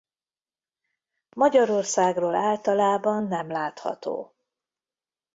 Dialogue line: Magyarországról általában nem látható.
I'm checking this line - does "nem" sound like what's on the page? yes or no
yes